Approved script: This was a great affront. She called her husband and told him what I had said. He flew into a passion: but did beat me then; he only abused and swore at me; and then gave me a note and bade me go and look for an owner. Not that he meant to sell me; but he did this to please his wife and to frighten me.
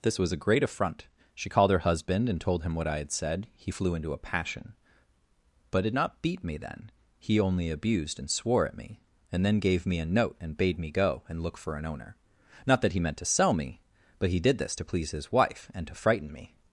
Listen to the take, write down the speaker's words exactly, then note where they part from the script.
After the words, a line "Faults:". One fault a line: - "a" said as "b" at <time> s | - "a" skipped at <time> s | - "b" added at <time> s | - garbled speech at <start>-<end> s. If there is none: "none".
This was a great affront. She called her husband and told him what I had said. He flew into a passion: but did not beat me then; he only abused and swore at me; and then gave me a note and bade me go and look for an owner. Not that he meant to sell me; but he did this to please his wife and to frighten me.
Faults:
- "not" added at 5.9 s